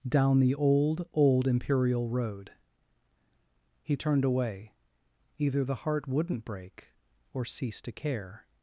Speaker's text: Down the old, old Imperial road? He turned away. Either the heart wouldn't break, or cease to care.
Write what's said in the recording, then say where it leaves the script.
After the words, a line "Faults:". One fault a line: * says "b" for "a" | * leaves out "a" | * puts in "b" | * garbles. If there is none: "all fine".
Down the old, old Imperial road? He turned away. Either the heart wouldn't break, or cease to care.
Faults:
all fine